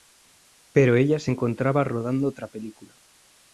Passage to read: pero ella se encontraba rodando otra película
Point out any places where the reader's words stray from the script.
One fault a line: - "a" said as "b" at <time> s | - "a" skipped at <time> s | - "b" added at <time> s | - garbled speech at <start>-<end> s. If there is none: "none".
none